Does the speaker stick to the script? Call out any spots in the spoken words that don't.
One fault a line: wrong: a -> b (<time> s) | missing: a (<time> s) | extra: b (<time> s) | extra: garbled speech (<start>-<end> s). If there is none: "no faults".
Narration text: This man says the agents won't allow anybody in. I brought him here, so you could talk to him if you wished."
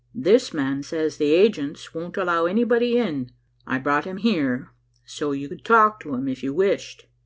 no faults